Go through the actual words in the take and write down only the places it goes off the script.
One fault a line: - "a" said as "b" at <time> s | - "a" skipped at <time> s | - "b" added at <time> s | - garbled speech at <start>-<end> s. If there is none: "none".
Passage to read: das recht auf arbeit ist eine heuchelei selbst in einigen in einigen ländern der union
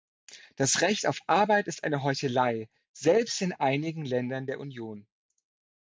- "in einigen" skipped at 4.0 s